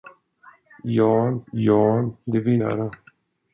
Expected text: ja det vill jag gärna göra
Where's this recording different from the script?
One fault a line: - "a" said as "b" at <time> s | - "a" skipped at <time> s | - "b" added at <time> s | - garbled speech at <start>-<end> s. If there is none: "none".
- "ja" added at 1.5 s
- "jag gärna" skipped at 2.6 s